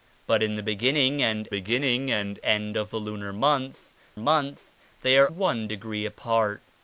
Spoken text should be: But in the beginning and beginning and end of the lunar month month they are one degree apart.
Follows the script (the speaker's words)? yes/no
yes